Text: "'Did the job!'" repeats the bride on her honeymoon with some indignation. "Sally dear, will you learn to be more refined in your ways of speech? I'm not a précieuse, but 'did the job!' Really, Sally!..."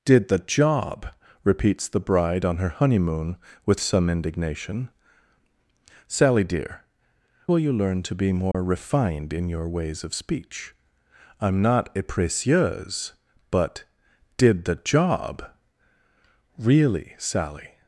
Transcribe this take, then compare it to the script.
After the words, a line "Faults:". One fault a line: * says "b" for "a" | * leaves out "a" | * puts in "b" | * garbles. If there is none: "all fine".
"'Did the job!'" repeats the bride on her honeymoon with some indignation. "Sally dear, will you learn to be more refined in your ways of speech? I'm not a précieuse, but 'did the job!' Really, Sally!..."
Faults:
all fine